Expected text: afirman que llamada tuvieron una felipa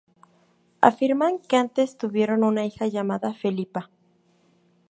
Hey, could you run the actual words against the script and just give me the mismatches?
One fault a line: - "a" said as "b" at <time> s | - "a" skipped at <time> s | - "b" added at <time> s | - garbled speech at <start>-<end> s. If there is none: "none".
- "llamada" said as "antes" at 1.6 s
- "hija llamada" added at 2.6 s